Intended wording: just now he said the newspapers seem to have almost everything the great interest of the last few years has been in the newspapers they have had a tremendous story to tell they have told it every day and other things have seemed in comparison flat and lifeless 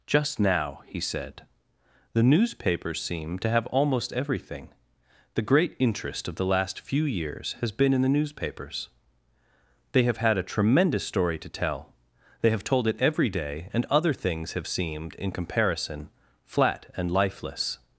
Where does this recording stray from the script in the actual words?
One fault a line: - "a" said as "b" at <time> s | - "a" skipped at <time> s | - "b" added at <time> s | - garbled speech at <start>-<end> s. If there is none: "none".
none